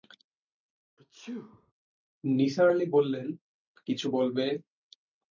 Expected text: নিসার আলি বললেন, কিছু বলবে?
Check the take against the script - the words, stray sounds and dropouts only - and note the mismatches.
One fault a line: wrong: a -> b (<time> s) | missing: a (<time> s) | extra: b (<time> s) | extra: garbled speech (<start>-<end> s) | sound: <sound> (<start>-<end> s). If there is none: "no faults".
sound: sneeze (1.0-1.7 s)